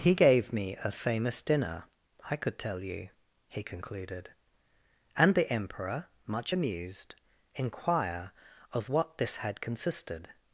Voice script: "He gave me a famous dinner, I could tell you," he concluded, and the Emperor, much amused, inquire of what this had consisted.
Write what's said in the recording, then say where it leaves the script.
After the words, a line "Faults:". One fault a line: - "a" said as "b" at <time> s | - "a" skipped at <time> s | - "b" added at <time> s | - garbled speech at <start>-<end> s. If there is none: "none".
"He gave me a famous dinner, I could tell you," he concluded, and the Emperor, much amused, inquire of what this had consisted.
Faults:
none